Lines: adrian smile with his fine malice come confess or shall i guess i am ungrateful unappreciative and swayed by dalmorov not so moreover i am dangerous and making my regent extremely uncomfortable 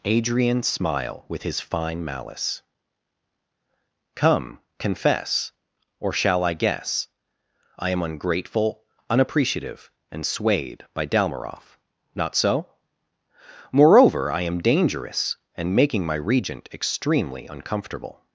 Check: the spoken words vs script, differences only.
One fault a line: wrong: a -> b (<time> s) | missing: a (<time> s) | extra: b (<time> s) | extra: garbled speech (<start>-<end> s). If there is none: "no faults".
no faults